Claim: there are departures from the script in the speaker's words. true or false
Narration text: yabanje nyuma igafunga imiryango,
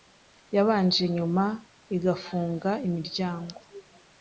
false